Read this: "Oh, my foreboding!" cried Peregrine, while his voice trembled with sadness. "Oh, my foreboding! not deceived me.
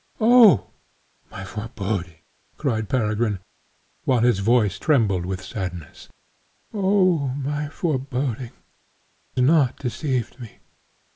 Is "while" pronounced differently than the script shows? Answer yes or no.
no